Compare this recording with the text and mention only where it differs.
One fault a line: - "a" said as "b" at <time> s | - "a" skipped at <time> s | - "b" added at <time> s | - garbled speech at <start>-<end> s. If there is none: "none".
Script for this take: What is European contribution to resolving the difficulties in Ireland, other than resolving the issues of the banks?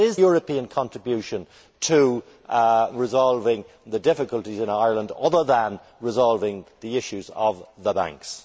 none